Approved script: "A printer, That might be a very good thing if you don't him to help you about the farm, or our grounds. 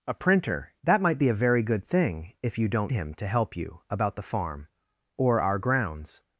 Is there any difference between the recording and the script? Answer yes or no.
no